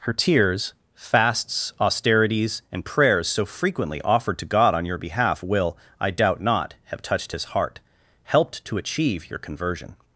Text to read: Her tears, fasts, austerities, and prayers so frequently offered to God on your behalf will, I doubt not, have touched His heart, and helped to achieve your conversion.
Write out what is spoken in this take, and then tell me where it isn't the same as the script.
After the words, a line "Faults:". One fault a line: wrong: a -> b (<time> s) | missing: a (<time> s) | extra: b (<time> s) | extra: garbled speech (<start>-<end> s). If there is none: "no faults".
Her tears, fasts, austerities, and prayers so frequently offered to God on your behalf will, I doubt not, have touched His heart, helped to achieve your conversion.
Faults:
missing: and (7.8 s)